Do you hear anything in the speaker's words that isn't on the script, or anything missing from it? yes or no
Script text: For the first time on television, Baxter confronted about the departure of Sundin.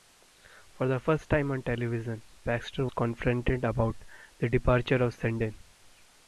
no